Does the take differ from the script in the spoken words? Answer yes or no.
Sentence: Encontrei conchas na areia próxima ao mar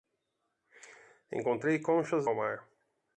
yes